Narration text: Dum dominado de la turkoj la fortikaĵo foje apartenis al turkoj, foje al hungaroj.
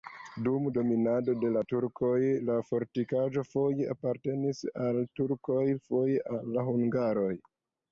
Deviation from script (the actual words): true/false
false